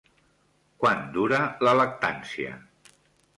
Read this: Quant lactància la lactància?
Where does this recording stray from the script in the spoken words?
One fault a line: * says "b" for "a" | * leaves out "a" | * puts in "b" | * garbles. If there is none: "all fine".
* says "dura" for "lactància"